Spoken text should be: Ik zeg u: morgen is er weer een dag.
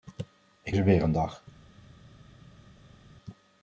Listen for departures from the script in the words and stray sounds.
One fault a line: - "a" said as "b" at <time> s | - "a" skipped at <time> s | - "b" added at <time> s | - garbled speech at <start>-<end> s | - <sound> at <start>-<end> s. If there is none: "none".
- "zeg u morgen" skipped at 0.8 s